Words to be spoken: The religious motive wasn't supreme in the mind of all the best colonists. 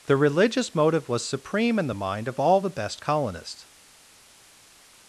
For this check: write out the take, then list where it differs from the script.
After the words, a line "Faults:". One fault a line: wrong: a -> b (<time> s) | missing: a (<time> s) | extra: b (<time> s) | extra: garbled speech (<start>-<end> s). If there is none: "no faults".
The religious motive was supreme in the mind of all the best colonists.
Faults:
wrong: wasn't -> was (1.1 s)